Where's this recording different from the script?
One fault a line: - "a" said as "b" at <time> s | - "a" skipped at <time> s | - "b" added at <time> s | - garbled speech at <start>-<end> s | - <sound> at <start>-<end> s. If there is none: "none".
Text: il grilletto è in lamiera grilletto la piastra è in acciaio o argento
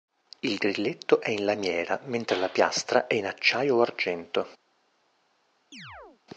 - "grilletto" said as "mentre" at 2.1 s
- chirp at 5.7-6.2 s